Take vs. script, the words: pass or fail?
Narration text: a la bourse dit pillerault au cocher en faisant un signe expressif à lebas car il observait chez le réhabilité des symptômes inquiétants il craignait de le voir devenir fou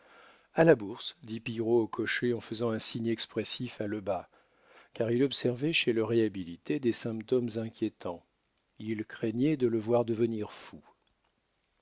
pass